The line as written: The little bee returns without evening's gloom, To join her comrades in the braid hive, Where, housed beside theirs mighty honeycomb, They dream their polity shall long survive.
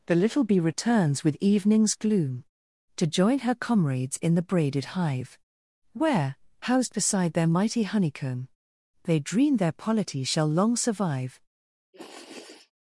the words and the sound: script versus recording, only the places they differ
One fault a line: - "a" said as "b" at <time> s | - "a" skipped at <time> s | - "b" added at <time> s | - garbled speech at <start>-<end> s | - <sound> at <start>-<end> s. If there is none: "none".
- "without" said as "with" at 1.2 s
- "braid" said as "braided" at 4.4 s
- "theirs" said as "their" at 7.3 s
- sniff at 11.9-12.7 s